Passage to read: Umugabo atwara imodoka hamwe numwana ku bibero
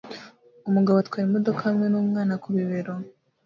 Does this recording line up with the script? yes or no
yes